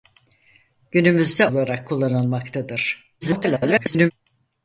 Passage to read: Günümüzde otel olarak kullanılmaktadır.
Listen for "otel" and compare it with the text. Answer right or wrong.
wrong